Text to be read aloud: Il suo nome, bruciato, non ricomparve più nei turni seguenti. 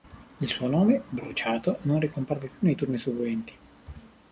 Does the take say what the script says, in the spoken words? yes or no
yes